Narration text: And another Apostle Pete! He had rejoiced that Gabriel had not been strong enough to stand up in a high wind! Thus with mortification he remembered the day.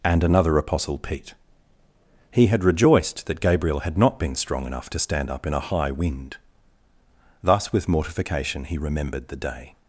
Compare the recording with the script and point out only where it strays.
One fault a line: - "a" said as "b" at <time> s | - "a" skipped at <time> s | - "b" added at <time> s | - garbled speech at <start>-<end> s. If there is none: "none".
none